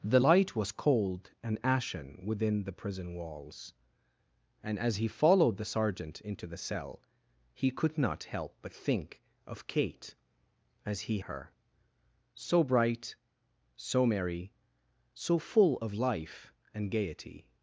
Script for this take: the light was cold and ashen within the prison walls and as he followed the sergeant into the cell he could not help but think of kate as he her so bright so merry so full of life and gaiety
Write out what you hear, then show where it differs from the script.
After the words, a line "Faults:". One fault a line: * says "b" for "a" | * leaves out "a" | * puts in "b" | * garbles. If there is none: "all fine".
the light was cold and ashen within the prison walls and as he followed the sergeant into the cell he could not help but think of kate as he her so bright so merry so full of life and gaiety
Faults:
all fine